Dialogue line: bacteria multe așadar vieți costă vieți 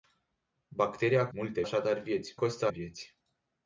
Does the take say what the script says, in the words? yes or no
yes